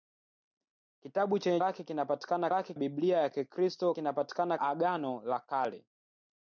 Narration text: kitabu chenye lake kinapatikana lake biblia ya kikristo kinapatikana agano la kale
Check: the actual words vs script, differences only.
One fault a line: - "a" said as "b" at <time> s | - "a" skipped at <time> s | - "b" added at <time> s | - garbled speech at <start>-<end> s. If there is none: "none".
none